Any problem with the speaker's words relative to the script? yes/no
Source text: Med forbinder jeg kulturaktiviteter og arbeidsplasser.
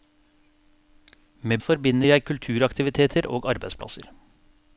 no